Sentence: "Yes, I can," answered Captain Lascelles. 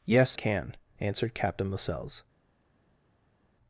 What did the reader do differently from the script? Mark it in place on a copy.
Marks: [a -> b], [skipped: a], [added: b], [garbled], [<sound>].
"Yes, [skipped: I] can," answered Captain Lascelles.